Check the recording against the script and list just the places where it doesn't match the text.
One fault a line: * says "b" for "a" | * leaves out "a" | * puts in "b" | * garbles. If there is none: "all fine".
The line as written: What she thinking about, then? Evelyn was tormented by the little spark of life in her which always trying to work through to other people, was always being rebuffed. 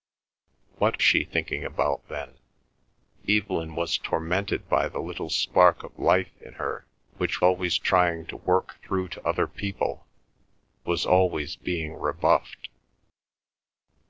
all fine